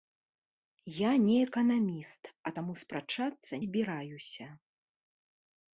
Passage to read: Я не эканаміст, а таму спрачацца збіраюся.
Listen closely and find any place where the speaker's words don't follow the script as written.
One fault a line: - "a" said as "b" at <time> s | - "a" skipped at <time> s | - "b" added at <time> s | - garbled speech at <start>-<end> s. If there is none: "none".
none